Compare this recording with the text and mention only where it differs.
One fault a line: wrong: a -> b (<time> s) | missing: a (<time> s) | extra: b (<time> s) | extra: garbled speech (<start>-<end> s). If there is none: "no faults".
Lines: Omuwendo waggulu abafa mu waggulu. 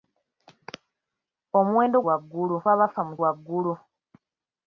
no faults